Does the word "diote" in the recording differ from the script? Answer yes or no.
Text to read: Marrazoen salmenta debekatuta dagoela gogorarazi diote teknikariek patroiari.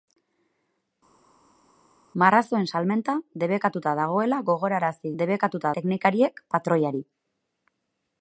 yes